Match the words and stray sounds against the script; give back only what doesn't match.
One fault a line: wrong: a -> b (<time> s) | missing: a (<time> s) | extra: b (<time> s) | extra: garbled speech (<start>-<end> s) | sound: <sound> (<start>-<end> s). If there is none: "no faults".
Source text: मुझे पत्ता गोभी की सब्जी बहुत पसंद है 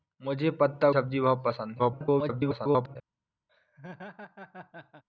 missing: गोभी की (0.9 s)
extra: garbled speech (1.8-3.0 s)
sound: laugh (3.5-5.0 s)